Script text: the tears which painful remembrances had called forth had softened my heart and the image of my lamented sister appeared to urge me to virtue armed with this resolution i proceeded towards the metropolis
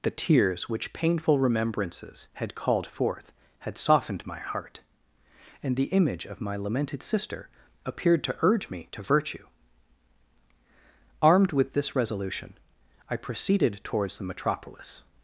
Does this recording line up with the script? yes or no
yes